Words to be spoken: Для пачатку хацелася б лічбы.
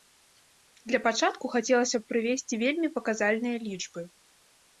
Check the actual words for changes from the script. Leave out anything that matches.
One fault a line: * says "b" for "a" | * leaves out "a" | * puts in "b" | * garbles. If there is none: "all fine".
* puts in "прывесці вельмі паказальныя"